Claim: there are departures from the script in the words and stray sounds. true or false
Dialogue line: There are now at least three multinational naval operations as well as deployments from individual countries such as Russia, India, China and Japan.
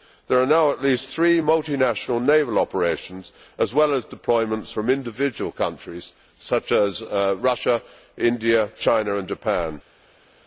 false